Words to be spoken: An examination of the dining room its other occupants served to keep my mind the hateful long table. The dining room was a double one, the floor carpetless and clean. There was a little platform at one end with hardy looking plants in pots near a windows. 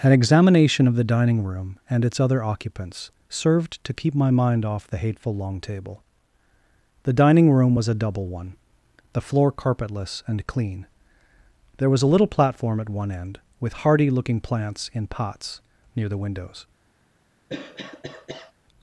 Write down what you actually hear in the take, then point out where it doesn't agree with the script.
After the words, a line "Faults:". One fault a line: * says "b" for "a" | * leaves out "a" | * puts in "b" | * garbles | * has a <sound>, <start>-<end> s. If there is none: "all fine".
An examination of the dining room and its other occupants served to keep my mind off the hateful long table. The dining room was a double one, the floor carpetless and clean. There was a little platform at one end with hardy looking plants in pots near the windows.
Faults:
* puts in "and"
* puts in "off"
* says "the" for "a"
* has a cough, 17.5-18.5 s